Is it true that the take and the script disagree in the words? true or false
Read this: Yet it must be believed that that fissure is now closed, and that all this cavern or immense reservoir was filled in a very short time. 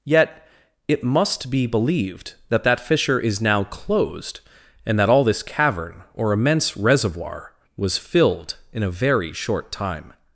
false